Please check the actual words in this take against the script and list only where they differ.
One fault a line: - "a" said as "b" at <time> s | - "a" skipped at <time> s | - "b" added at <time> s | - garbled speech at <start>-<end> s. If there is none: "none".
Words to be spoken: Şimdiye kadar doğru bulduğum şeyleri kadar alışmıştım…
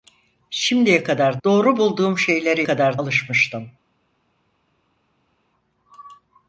none